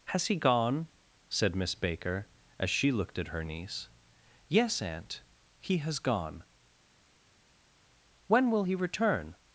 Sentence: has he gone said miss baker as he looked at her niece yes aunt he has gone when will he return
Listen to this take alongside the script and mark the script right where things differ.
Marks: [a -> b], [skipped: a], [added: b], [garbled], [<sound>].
has he gone said miss baker as [he -> she] looked at her niece yes aunt he has gone when will he return